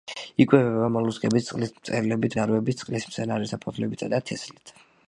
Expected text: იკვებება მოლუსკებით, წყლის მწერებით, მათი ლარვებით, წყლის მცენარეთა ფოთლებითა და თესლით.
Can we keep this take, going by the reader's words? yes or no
no